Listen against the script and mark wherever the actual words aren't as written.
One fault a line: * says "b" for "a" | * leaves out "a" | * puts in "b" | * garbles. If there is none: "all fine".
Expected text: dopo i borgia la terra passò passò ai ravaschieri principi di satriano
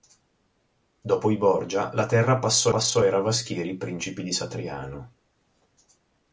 all fine